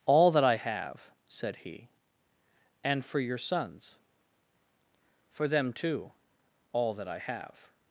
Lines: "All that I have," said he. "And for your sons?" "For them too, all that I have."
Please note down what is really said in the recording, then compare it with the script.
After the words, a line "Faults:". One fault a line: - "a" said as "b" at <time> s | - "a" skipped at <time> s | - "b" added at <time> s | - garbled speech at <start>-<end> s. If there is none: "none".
"All that I have," said he. "And for your sons?" "For them too, all that I have."
Faults:
none